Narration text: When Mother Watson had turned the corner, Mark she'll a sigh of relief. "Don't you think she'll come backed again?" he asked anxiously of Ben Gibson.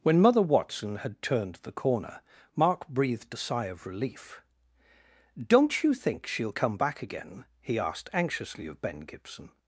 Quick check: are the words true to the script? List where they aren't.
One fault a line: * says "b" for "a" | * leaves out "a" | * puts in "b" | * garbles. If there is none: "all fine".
* says "breathed" for "she'll"
* says "back" for "backed"